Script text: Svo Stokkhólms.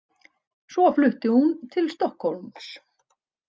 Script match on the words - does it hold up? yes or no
no